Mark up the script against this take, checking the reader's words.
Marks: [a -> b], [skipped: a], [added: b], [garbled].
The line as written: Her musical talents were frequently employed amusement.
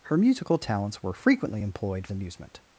Her musical talents were frequently employed amusement.